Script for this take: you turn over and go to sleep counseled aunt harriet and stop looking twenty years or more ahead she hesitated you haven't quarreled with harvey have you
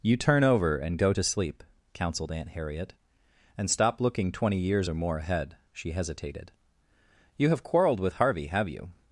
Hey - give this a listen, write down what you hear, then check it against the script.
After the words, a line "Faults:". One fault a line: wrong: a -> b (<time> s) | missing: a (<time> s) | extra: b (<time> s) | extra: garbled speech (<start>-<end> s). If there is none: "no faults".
you turn over and go to sleep counseled aunt harriet and stop looking twenty years or more ahead she hesitated you have quarreled with harvey have you
Faults:
wrong: haven't -> have (7.5 s)